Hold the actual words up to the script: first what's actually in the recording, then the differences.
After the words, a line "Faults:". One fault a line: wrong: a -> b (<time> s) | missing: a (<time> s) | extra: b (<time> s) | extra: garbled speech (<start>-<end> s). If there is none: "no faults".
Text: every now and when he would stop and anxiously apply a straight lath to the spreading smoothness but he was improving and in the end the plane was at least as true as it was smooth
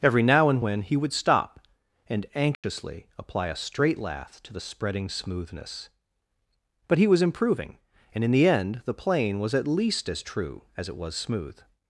every now and when he would stop and anxiously apply a straight lath to the spreading smoothness but he was improving and in the end the plane was at least as true as it was smooth
Faults:
no faults